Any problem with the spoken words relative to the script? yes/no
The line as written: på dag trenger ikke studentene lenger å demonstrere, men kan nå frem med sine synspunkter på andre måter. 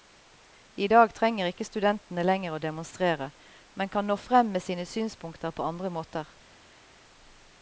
yes